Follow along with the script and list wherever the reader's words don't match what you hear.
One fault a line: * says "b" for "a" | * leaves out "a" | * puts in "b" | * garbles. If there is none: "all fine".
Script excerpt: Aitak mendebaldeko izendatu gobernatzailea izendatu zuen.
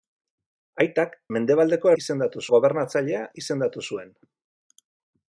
all fine